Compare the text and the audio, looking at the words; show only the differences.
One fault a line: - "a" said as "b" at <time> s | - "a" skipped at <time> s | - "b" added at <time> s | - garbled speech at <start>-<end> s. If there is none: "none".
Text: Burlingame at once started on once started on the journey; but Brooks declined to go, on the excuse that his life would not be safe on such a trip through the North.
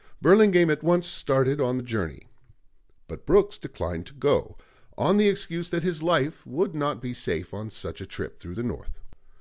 - "once started on" skipped at 1.8 s